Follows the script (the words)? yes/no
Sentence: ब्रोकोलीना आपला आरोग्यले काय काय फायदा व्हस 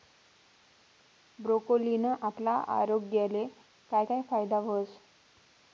yes